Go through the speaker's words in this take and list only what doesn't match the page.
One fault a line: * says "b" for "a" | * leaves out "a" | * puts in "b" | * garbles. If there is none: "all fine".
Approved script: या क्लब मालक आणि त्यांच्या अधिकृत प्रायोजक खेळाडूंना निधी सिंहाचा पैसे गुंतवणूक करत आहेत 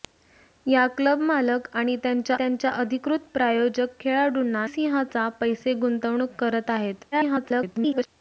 * puts in "त्यांच्या"
* leaves out "निधी"
* garbles